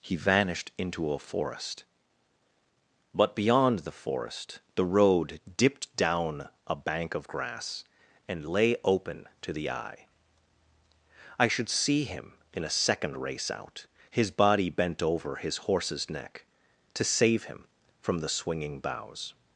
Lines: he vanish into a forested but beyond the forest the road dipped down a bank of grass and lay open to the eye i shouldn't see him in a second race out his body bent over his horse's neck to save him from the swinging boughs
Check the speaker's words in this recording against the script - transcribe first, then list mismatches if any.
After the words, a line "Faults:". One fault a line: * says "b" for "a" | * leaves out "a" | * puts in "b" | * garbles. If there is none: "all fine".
he vanished into a forest but beyond the forest the road dipped down a bank of grass and lay open to the eye i should see him in a second race out his body bent over his horse's neck to save him from the swinging boughs
Faults:
* says "vanished" for "vanish"
* says "forest" for "forested"
* says "should" for "shouldn't"